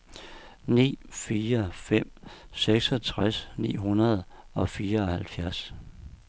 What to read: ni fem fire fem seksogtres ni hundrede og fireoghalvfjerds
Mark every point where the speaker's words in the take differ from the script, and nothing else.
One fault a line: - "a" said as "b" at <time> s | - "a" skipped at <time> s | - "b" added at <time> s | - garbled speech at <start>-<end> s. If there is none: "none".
- "fem" skipped at 1.0 s